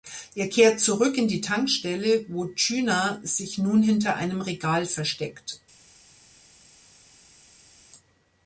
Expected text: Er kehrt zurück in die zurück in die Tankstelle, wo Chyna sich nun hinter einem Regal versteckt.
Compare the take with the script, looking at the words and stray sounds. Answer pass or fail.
fail